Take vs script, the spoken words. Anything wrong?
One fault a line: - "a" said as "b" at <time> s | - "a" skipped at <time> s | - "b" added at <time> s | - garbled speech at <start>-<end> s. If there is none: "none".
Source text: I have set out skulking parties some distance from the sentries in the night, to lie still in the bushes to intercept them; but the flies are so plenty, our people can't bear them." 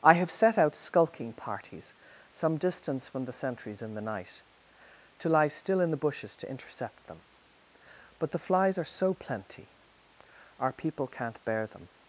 none